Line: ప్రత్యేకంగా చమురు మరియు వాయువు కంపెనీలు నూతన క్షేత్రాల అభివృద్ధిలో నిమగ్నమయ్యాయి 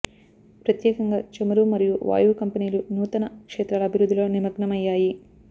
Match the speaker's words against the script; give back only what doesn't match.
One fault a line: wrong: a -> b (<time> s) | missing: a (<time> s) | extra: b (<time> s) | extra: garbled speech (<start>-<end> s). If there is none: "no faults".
no faults